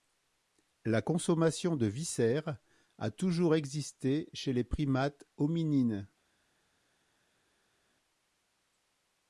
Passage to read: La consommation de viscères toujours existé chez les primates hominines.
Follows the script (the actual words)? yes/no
no